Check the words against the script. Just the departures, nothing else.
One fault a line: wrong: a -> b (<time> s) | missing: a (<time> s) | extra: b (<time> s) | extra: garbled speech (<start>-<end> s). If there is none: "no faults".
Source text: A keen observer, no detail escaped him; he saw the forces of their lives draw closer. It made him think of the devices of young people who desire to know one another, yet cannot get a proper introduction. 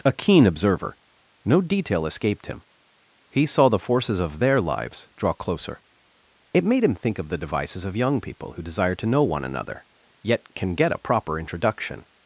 wrong: cannot -> can (10.6 s)